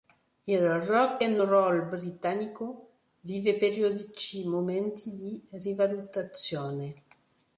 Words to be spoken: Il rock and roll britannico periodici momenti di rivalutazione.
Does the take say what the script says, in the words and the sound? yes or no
no